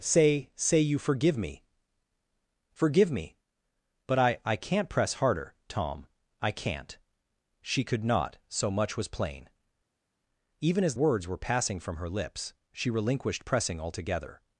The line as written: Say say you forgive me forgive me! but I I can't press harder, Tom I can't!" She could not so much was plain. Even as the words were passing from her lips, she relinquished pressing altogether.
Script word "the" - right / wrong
wrong